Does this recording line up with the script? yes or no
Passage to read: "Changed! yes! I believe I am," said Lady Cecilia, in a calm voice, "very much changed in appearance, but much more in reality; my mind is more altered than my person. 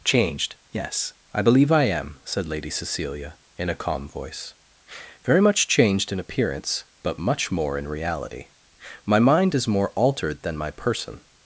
yes